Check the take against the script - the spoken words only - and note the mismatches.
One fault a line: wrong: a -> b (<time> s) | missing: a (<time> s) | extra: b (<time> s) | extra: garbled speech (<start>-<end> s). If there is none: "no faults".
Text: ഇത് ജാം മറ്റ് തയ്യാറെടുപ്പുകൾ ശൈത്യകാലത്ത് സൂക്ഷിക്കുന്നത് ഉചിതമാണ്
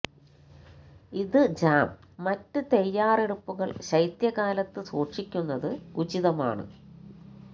no faults